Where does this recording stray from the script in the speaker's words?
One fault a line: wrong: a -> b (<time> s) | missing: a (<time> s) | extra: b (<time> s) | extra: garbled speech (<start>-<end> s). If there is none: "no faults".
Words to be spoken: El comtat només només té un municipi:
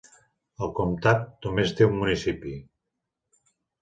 missing: només (1.7 s)